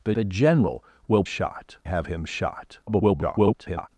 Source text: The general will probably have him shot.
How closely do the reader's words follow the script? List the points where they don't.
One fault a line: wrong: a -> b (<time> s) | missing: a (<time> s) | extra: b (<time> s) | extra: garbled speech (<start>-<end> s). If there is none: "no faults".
extra: the (0.1 s)
wrong: probably -> shot (1.2 s)
extra: garbled speech (2.9-3.9 s)